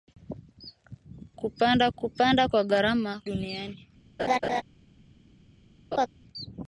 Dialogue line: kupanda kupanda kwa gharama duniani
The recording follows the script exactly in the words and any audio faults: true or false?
false